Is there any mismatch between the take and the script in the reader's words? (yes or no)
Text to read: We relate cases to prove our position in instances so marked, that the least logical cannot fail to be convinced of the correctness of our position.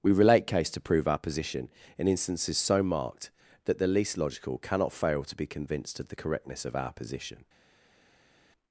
yes